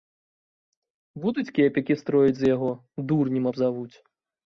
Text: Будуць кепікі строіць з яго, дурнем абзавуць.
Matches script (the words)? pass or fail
pass